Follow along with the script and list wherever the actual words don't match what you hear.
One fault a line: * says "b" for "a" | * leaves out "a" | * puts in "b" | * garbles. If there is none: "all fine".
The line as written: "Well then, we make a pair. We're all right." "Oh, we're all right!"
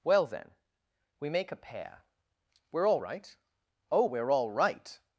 all fine